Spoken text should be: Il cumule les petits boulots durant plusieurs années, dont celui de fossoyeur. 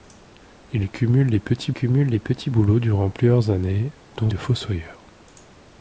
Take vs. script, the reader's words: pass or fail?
fail